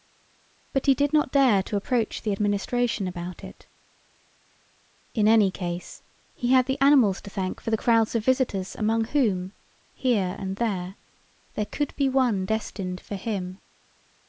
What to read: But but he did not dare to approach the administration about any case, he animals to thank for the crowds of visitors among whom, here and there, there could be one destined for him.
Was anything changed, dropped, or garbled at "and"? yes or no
no